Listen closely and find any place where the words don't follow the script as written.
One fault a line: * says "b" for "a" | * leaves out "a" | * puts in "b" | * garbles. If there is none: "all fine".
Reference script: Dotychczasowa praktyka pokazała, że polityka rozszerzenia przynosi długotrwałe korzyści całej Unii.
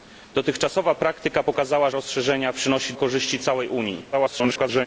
* leaves out "że polityka"
* leaves out "długotrwałe"
* garbles